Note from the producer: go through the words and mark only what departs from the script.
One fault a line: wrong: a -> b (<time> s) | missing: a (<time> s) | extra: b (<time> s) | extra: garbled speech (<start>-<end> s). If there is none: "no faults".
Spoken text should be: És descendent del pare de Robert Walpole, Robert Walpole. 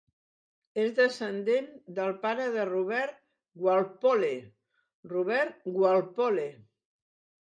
no faults